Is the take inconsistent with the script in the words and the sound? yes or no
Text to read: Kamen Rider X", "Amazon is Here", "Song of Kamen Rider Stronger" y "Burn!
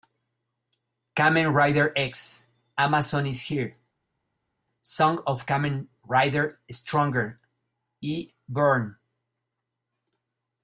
no